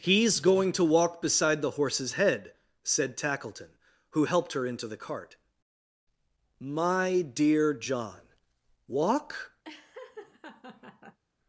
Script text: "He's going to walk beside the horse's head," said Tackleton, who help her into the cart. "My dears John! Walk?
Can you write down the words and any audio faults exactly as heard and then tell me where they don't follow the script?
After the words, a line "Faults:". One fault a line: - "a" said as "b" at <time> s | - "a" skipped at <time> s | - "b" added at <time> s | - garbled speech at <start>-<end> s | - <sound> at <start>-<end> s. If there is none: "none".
"He's going to walk beside the horse's head," said Tackleton, who helped her into the cart. "My dear John! Walk?
Faults:
- "help" said as "helped" at 4.3 s
- "dears" said as "dear" at 7.2 s
- laugh at 9.6-11.2 s